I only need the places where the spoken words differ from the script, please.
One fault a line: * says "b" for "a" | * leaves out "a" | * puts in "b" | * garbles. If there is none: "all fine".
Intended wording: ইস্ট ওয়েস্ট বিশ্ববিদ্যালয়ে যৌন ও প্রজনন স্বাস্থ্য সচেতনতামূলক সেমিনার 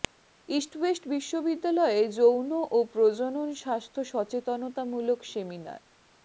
all fine